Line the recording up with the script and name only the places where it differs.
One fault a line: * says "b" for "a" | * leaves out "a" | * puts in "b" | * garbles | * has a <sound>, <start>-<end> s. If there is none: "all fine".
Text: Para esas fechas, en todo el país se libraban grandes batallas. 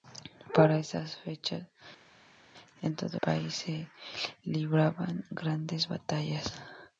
* leaves out "el"